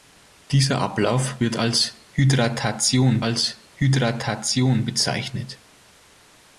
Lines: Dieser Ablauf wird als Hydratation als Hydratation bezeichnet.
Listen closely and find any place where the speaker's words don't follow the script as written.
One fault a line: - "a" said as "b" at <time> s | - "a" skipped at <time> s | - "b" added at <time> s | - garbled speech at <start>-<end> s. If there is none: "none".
none